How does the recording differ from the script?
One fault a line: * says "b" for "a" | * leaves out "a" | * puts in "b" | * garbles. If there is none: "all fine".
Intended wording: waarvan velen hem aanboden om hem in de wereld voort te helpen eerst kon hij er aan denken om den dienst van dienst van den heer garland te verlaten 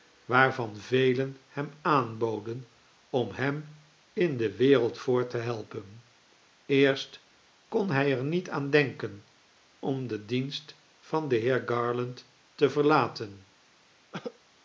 * puts in "niet"
* leaves out "dienst van"